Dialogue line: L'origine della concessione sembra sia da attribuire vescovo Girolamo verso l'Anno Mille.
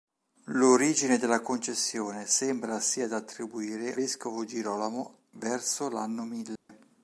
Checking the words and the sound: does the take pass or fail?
fail